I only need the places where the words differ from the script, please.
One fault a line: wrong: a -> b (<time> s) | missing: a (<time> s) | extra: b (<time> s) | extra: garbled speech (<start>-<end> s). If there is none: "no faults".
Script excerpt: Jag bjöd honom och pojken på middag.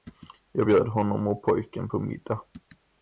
no faults